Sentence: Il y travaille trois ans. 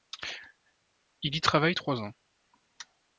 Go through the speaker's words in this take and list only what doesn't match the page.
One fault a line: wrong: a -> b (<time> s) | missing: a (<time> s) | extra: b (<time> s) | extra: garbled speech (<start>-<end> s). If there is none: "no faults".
no faults